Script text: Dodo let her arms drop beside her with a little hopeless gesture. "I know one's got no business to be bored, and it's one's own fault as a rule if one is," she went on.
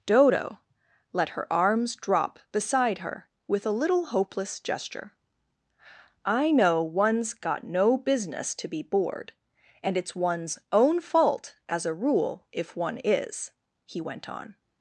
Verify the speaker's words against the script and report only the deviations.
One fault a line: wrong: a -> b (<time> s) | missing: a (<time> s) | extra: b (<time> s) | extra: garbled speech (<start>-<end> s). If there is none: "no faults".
wrong: she -> he (13.8 s)